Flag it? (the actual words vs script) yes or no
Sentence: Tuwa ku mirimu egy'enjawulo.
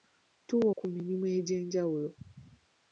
no